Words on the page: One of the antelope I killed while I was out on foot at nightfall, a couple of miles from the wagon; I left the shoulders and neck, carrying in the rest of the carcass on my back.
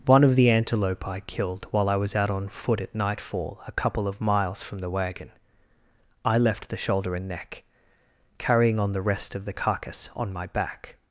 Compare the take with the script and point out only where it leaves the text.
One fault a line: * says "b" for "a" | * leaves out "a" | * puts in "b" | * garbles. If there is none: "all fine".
* says "shoulder" for "shoulders"
* says "on" for "in"